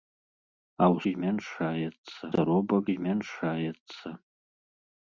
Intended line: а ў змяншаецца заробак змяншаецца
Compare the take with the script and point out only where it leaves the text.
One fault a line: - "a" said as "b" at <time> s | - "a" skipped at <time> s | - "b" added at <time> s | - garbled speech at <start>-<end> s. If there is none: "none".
none